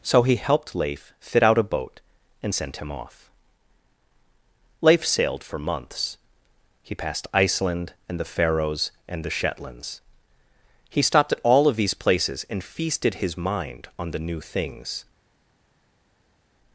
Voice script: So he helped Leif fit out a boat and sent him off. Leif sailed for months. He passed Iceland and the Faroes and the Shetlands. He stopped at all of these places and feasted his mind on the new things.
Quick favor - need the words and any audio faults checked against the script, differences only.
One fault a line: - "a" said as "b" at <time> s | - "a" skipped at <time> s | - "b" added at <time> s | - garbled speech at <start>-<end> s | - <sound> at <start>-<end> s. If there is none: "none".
none